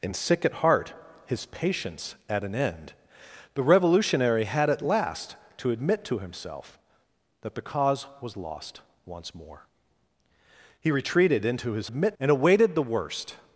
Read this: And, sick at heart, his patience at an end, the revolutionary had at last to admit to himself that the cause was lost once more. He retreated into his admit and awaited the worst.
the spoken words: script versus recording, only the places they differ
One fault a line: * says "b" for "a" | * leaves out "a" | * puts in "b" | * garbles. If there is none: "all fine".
all fine